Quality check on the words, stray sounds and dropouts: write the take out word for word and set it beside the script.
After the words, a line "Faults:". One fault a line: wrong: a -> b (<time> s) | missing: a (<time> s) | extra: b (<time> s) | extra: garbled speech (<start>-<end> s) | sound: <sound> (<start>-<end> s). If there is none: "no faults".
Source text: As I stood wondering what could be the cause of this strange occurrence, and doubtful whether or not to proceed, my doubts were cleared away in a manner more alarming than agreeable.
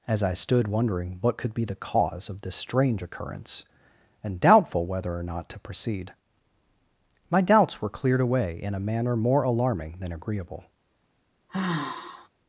As I stood wondering what could be the cause of this strange occurrence, and doubtful whether or not to proceed, my doubts were cleared away in a manner more alarming than agreeable.
Faults:
sound: sigh (11.5-12.3 s)